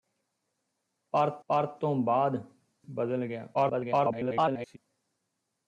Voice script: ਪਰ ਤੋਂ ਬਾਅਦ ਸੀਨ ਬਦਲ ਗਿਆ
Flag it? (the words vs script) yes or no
yes